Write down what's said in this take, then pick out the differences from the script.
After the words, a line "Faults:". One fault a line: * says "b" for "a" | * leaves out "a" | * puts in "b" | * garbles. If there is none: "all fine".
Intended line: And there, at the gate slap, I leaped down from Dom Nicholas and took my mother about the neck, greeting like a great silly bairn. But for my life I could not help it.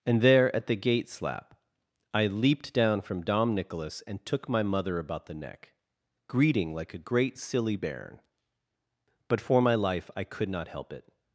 And there, at the gate slap, I leaped down from Dom Nicholas and took my mother about the neck, greeting like a great silly bairn. But for my life I could not help it.
Faults:
all fine